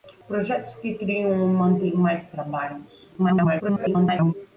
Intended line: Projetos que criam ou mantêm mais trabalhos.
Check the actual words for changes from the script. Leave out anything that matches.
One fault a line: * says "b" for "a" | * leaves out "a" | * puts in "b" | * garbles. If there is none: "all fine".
* garbles